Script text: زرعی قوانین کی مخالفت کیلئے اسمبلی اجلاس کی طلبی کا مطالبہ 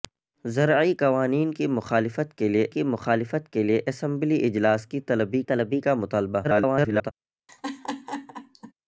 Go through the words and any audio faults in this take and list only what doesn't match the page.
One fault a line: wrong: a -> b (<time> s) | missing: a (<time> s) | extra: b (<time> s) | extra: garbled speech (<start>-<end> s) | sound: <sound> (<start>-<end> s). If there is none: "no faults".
extra: کی مخالفت کیلئے (2.7 s)
extra: طلبی (5.4 s)
extra: garbled speech (6.4-7.1 s)
sound: laugh (7.5-8.7 s)